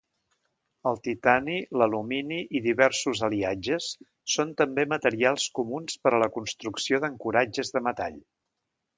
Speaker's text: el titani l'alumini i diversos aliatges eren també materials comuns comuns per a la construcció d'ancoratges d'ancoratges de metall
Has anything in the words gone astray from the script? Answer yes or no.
yes